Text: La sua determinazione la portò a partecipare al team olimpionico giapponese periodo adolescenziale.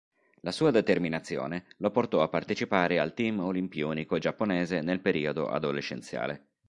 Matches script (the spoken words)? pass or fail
fail